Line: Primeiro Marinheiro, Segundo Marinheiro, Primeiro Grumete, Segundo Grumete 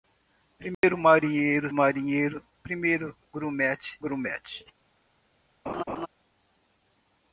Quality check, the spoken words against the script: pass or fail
fail